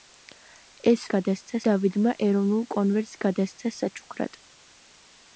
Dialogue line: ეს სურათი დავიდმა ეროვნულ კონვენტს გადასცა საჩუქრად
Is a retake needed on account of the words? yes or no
yes